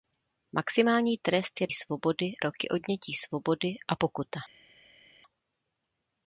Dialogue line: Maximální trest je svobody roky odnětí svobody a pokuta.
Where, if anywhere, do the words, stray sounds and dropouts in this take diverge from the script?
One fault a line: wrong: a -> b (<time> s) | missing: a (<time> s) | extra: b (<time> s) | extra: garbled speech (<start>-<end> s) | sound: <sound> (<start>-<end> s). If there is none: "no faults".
no faults